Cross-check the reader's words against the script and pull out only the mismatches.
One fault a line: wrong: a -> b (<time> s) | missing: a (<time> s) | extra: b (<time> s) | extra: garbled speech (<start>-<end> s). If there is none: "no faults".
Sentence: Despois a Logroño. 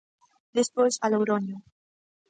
no faults